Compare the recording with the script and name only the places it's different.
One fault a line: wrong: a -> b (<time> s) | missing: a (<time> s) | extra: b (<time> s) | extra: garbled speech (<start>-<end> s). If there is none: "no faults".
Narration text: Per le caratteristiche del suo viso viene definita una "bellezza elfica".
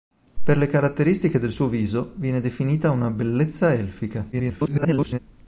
extra: garbled speech (4.3-5.2 s)